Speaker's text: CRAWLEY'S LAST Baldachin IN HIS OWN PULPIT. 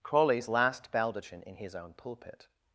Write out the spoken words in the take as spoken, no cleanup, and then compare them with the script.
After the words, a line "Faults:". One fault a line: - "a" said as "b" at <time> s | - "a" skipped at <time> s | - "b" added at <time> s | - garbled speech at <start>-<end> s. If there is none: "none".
CRAWLEY'S LAST Baldachin IN HIS OWN PULPIT.
Faults:
none